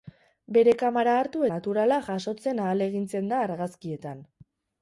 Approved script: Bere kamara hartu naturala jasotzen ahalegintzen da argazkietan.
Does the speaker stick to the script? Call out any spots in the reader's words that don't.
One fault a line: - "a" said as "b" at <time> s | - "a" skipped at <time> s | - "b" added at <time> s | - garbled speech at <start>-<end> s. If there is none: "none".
none